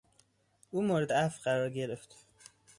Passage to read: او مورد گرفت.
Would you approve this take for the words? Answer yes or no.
no